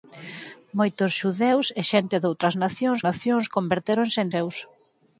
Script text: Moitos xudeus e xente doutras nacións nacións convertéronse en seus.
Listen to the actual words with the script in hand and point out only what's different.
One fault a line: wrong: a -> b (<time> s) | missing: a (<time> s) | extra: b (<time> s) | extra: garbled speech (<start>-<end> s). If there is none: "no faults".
no faults